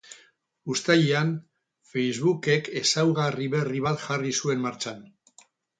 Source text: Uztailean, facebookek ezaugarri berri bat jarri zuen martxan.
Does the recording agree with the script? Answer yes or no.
yes